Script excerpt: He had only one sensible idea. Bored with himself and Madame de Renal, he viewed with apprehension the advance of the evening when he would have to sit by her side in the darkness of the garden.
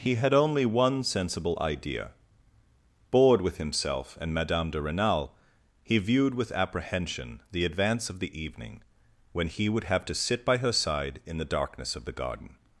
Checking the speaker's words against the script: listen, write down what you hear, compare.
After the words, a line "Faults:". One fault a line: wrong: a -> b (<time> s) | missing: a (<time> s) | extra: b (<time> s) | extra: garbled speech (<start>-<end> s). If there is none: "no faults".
He had only one sensible idea. Bored with himself and Madame de Renal, he viewed with apprehension the advance of the evening when he would have to sit by her side in the darkness of the garden.
Faults:
no faults